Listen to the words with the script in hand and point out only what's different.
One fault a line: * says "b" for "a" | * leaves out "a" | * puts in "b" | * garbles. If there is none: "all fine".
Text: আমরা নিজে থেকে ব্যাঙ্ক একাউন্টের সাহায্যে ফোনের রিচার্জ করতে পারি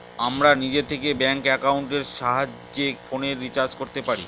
all fine